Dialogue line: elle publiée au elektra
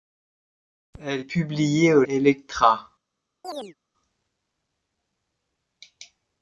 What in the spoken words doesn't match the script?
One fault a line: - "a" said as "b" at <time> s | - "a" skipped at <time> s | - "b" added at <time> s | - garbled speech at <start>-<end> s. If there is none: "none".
none